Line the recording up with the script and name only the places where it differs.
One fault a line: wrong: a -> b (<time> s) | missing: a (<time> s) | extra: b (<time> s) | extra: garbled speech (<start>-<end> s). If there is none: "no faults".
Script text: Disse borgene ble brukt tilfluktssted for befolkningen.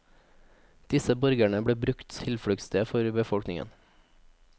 no faults